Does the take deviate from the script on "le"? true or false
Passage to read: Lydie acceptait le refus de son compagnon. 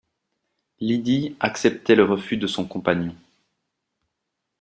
false